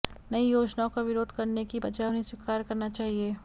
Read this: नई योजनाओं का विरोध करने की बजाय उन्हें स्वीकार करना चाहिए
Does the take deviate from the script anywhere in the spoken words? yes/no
no